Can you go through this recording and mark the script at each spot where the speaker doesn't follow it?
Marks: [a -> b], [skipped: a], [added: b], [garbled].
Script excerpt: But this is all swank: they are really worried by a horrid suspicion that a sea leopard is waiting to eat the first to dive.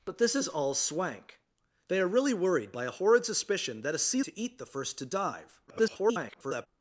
But this is all swank: they are really worried by a horrid suspicion that a sea [skipped: leopard is waiting] to eat the first to dive. [garbled]